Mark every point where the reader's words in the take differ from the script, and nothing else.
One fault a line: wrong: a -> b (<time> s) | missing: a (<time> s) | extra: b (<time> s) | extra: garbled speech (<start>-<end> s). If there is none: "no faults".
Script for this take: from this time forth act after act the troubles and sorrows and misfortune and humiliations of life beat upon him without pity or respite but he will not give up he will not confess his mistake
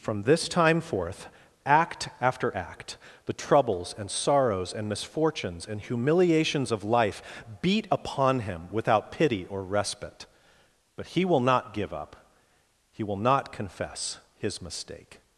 wrong: misfortune -> misfortunes (4.9 s)